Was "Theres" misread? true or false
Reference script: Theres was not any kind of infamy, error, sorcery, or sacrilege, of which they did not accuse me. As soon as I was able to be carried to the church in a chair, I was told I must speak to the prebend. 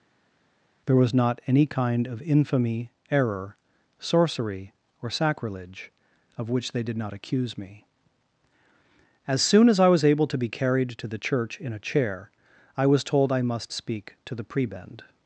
true